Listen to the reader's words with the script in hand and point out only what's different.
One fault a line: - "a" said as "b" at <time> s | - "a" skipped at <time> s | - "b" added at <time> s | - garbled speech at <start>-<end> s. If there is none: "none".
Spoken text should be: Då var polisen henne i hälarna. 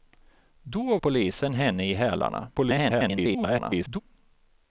- "var" skipped at 1.0 s
- garbled speech at 2.5-4.0 s